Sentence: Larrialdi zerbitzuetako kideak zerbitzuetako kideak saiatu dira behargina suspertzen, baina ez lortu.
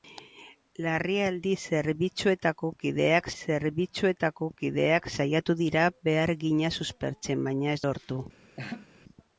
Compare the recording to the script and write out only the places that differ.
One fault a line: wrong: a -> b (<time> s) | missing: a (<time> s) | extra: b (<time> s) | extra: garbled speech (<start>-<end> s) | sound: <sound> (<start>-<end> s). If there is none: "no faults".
sound: laugh (8.6-8.9 s)